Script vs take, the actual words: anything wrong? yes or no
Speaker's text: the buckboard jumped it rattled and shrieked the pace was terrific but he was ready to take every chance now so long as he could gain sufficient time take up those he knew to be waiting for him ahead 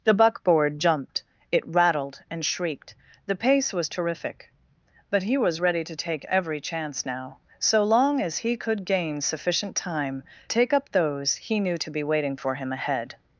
no